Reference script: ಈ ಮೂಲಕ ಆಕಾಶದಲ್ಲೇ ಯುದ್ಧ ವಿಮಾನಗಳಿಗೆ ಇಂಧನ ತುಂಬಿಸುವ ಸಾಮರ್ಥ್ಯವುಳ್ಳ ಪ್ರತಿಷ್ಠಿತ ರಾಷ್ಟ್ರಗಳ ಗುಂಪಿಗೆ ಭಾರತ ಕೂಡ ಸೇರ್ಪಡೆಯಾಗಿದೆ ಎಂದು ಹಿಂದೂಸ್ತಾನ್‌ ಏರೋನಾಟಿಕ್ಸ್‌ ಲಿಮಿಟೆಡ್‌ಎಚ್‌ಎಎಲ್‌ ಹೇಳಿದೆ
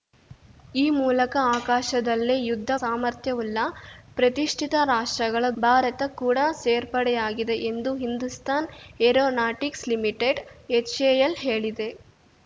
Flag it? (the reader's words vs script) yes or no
yes